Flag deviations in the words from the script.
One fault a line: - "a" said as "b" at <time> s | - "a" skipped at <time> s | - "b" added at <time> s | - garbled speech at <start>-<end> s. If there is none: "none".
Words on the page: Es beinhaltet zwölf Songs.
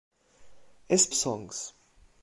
- "beinhaltet zwölf" skipped at 1.1 s